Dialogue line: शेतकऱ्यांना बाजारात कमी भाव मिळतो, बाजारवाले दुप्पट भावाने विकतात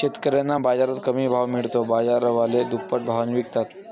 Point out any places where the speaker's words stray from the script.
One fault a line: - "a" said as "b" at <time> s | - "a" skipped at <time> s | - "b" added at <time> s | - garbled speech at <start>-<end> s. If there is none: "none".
none